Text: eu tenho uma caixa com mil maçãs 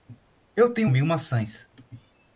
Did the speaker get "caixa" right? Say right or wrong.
wrong